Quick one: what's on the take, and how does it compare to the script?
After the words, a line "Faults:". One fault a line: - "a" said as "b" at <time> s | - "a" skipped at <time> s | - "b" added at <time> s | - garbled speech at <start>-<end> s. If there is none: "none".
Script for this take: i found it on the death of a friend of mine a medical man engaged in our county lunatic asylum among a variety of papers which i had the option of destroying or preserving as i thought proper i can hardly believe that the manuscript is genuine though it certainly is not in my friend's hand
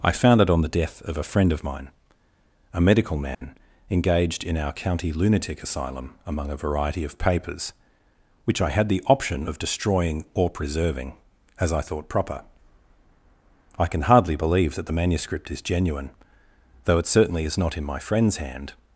i found it on the death of a friend of mine a medical man engaged in our county lunatic asylum among a variety of papers which i had the option of destroying or preserving as i thought proper i can hardly believe that the manuscript is genuine though it certainly is not in my friend's hand
Faults:
none